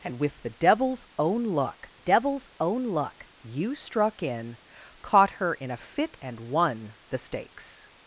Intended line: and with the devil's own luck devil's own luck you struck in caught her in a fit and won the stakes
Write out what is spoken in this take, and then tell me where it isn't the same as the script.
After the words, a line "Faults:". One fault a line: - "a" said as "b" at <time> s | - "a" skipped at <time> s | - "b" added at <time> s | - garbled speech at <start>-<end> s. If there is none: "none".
and with the devil's own luck devil's own luck you struck in caught her in a fit and won the stakes
Faults:
none